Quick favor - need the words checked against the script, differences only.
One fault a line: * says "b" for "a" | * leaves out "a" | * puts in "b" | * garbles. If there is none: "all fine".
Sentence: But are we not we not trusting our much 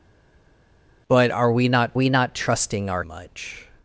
all fine